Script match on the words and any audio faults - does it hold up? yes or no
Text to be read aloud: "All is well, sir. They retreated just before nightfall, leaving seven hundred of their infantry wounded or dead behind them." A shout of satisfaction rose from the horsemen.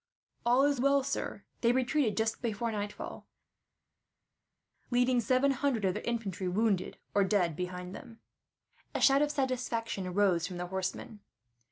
yes